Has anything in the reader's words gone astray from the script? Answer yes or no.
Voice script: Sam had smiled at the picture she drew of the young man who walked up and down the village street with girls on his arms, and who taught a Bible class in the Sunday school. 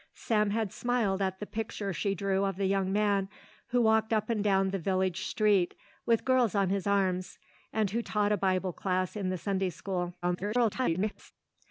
yes